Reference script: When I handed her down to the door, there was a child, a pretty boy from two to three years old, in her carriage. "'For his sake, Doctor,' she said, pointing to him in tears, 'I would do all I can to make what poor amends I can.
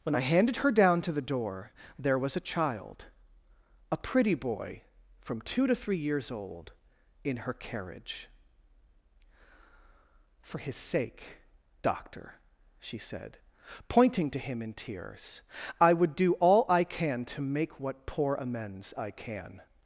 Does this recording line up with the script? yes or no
yes